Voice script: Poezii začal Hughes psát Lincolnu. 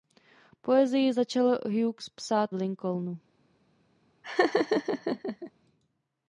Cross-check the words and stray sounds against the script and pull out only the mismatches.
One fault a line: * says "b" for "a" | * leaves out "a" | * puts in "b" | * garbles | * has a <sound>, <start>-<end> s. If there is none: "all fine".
* has a laugh, 4.2-5.5 s